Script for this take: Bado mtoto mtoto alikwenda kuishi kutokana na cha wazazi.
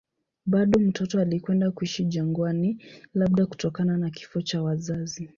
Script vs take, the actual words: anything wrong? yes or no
yes